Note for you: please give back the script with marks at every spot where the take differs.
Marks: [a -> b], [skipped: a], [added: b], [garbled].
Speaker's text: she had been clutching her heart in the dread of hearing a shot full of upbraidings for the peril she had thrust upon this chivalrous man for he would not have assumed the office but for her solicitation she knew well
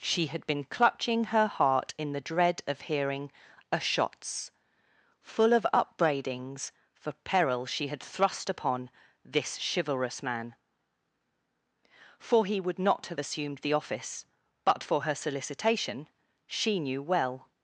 she had been clutching her heart in the dread of hearing a [shot -> shots] full of upbraidings for [skipped: the] peril she had thrust upon this chivalrous man for he would not have assumed the office but for her solicitation she knew well